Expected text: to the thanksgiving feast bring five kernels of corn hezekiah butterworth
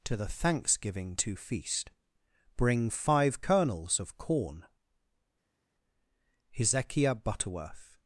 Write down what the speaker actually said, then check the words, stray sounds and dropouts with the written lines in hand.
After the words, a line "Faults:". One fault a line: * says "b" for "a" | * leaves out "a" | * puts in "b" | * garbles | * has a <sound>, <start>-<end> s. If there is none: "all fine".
to the thanksgiving to feast bring five kernels of corn hezekiah butterworth
Faults:
* puts in "to"